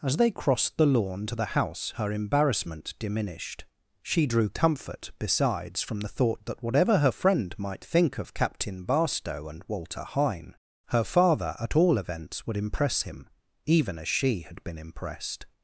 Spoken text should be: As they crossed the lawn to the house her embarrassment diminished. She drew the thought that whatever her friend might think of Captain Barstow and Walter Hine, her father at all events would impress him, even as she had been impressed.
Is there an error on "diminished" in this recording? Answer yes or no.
no